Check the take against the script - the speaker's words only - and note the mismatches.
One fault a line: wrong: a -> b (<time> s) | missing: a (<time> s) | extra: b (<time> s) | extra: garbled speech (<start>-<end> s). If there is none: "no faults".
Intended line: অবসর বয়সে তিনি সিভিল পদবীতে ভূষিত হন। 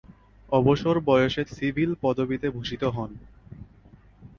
missing: তিনি (1.4 s)